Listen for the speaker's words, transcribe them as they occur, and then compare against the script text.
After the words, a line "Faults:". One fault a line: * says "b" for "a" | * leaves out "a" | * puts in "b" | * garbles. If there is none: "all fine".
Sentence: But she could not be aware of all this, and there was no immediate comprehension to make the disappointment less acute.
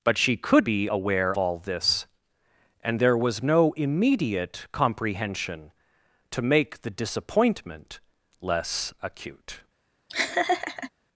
But she could be aware all this, and there was no immediate comprehension to make the disappointment less acute.
Faults:
* leaves out "not"
* leaves out "of"